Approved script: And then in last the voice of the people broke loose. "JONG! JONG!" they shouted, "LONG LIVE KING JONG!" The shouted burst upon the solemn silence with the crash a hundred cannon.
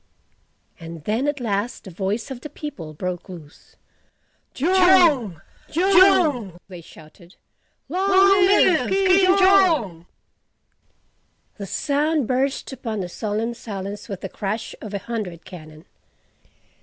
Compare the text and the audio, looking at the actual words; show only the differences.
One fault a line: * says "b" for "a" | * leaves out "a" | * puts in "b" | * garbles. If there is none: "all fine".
* says "at" for "in"
* says "sound" for "shouted"
* puts in "of"